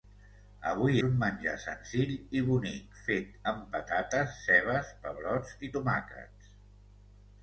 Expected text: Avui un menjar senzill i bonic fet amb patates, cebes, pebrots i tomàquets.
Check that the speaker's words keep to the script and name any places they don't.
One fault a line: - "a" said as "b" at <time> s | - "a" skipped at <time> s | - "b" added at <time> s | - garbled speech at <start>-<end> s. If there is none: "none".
none